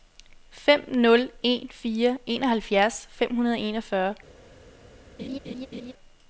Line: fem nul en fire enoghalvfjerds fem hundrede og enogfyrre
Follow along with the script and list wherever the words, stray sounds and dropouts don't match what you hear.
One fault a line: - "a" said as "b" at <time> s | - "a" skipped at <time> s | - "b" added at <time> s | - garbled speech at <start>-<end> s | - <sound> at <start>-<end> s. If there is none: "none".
- laugh at 5.2-5.9 s